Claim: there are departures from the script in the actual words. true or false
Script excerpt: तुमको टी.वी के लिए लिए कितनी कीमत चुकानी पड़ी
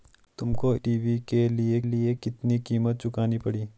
false